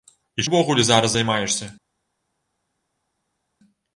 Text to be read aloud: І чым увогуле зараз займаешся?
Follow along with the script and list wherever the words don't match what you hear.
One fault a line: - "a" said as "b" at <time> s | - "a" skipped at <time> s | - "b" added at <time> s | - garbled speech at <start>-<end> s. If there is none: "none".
- "чым" skipped at 0.5 s